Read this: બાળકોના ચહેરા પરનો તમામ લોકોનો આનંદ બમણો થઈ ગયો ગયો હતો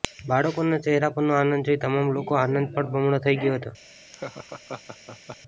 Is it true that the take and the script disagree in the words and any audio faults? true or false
true